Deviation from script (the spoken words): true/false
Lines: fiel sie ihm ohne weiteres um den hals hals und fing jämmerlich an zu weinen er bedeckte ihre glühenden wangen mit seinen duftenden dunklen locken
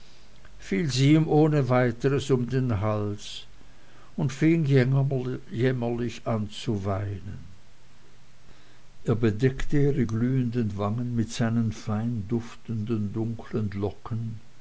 true